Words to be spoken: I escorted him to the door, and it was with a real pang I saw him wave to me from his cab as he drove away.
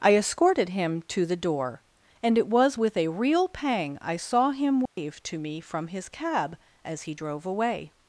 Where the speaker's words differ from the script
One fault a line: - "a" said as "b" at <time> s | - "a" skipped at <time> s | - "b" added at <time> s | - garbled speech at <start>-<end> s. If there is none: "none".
none